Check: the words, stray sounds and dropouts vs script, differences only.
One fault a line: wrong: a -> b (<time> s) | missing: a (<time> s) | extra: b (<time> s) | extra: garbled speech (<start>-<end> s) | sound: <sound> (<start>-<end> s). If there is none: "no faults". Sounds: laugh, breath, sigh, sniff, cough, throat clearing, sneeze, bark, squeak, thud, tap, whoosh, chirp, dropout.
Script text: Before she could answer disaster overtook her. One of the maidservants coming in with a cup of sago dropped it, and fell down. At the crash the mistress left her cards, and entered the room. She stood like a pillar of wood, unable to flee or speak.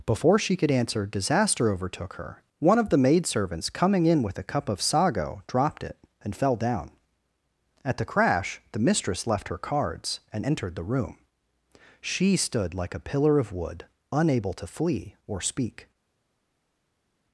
no faults